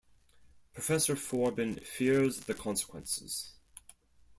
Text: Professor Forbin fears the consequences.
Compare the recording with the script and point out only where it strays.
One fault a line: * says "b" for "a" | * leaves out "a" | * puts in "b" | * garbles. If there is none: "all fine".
all fine